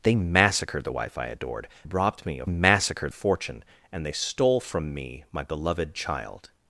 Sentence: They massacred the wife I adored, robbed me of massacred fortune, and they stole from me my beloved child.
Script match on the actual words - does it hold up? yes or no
yes